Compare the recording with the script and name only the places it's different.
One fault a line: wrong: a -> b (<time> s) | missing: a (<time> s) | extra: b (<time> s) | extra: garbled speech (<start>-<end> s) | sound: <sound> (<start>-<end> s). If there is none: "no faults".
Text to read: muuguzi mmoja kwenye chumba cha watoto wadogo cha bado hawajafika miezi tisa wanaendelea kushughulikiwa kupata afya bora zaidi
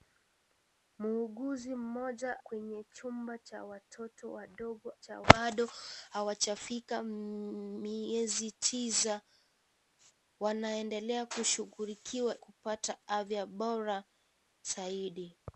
no faults